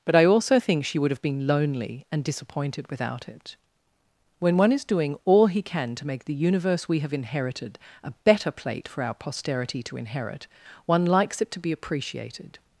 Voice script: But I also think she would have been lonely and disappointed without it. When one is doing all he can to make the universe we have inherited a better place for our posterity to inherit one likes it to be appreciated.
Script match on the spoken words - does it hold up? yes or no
no